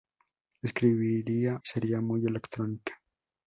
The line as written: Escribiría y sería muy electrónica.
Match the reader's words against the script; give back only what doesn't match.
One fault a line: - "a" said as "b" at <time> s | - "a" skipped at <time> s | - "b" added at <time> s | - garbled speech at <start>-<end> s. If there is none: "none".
none